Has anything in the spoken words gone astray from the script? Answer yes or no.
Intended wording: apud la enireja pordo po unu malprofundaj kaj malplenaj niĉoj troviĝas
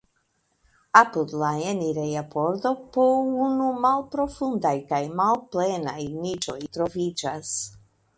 no